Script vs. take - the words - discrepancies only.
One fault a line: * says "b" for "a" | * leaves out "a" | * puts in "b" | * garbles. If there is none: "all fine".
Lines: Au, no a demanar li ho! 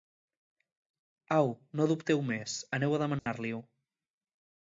* puts in "dubteu més aneu"